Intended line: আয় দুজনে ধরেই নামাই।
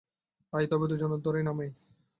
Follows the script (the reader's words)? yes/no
no